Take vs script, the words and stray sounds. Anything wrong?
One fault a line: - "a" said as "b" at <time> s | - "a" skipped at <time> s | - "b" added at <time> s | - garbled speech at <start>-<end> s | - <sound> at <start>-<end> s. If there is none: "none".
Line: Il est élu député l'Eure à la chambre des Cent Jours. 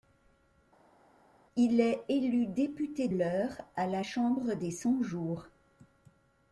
none